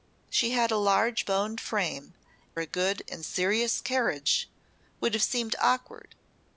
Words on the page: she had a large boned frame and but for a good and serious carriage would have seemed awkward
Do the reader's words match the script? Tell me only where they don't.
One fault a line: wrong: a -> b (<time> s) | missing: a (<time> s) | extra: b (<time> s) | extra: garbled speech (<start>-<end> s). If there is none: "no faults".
missing: and but for (2.1 s)